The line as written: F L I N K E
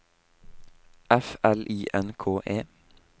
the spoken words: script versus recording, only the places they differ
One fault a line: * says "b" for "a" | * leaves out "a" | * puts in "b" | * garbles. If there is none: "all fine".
all fine